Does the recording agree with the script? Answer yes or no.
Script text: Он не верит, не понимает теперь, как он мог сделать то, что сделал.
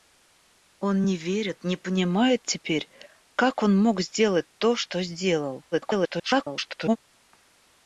no